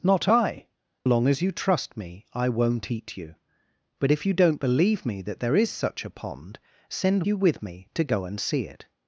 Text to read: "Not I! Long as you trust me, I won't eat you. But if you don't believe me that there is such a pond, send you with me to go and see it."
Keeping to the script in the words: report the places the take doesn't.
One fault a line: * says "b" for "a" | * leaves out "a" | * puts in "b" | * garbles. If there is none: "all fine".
all fine